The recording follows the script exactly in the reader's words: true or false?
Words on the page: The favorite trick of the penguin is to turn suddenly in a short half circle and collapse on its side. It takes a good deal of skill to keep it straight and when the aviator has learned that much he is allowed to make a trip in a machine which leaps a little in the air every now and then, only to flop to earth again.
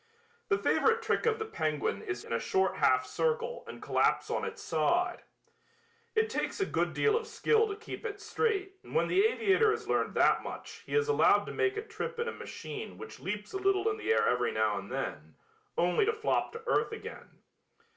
false